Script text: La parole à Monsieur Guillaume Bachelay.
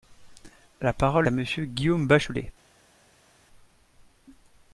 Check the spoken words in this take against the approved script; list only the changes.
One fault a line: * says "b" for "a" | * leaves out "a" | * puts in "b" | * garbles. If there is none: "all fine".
all fine